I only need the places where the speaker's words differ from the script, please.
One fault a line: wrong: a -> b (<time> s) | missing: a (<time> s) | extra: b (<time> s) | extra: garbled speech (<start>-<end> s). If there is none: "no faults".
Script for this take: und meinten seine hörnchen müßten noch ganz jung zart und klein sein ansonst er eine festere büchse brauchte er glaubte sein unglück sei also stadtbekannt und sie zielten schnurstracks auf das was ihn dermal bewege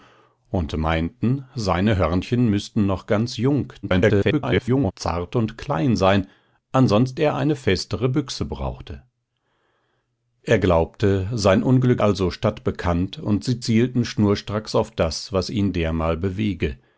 extra: garbled speech (3.8-4.9 s)
missing: sei (12.0 s)